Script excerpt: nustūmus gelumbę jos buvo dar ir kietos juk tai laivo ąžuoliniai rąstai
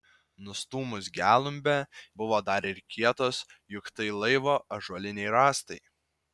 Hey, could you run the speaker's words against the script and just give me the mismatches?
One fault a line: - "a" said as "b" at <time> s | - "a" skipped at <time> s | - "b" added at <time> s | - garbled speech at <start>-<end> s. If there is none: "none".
- "jos" skipped at 1.8 s